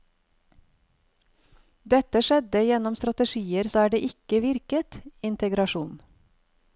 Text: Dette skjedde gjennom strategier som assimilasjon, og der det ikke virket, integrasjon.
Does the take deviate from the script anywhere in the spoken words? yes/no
yes